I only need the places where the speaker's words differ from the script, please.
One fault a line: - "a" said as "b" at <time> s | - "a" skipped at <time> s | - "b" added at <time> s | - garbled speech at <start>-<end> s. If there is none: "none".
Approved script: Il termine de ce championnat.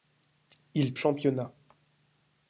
- "termine de ce" skipped at 0.9 s